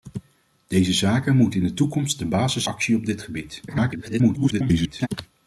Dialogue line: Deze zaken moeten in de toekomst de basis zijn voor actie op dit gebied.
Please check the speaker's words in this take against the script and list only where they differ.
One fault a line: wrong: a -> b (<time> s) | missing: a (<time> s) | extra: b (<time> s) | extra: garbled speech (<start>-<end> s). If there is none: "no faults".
missing: zijn voor (2.6 s)
extra: garbled speech (3.7-5.1 s)